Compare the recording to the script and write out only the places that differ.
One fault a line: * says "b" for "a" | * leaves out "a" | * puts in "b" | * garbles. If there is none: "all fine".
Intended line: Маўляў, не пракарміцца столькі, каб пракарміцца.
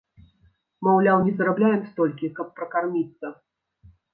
* says "зарабляем" for "пракарміцца"